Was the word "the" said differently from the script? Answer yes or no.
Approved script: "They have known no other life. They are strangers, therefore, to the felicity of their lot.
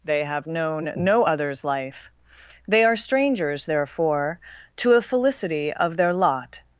yes